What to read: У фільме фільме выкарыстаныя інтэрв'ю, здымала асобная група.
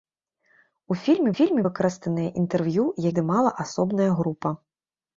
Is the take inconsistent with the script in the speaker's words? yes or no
no